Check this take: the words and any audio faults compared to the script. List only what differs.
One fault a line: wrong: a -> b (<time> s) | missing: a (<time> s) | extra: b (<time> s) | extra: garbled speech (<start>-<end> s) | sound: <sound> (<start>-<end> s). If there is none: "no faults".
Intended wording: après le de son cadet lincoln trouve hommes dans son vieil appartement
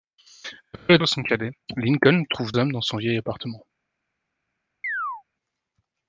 sound: chirp (4.8-5.2 s)